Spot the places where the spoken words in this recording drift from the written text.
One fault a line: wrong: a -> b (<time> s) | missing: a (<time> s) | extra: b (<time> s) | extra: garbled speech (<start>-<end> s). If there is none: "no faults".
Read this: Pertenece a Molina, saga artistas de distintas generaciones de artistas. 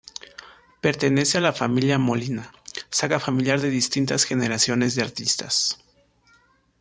extra: la familia (1.4 s)
wrong: artistas -> familiar (3.2 s)